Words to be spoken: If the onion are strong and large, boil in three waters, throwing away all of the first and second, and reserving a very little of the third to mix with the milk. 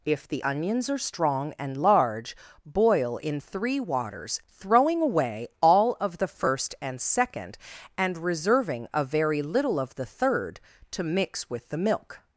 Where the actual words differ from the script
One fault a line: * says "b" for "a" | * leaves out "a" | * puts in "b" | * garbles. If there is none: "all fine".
* says "onions" for "onion"